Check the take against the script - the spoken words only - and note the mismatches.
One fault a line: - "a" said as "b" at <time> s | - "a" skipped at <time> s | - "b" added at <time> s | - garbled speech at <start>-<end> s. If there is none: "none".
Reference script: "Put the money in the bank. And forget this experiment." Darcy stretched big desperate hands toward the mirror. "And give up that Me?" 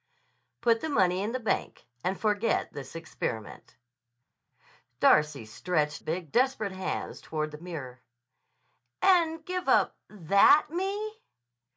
none